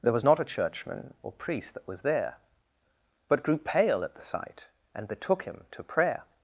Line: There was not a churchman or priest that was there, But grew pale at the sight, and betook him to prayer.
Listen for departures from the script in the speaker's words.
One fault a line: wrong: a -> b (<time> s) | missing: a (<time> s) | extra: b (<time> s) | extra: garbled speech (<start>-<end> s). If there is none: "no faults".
no faults